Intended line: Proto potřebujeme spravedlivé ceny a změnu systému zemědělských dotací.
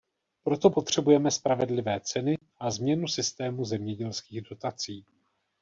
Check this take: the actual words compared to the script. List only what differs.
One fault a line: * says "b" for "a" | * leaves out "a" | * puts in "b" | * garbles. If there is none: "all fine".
all fine